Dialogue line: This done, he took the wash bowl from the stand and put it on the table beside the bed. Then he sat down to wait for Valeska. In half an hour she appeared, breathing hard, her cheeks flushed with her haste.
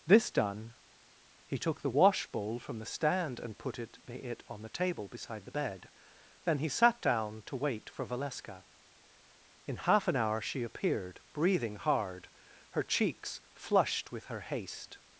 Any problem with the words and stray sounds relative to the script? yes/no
yes